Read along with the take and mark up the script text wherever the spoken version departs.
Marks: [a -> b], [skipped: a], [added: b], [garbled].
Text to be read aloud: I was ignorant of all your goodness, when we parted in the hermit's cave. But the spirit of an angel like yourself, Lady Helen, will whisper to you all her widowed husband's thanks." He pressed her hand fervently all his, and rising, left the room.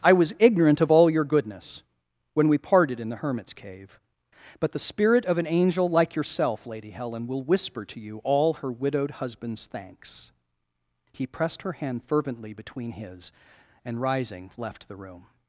I was ignorant of all your goodness, when we parted in the hermit's cave. But the spirit of an angel like yourself, Lady Helen, will whisper to you all her widowed husband's thanks." He pressed her hand fervently [all -> between] his, and rising, left the room.